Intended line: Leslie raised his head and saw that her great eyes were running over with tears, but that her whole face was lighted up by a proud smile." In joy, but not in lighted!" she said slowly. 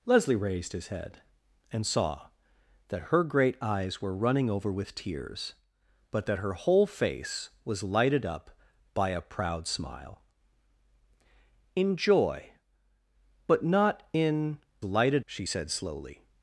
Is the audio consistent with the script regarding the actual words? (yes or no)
yes